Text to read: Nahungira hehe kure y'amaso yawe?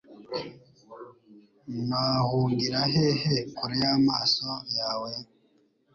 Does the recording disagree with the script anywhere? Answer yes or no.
no